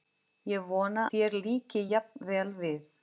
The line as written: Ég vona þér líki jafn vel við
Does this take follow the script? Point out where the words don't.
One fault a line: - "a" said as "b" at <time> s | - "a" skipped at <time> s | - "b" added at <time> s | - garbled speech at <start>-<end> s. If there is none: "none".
none